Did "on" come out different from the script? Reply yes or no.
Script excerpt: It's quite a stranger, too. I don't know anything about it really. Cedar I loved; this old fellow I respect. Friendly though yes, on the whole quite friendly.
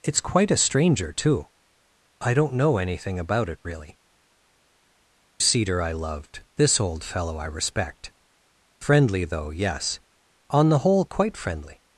no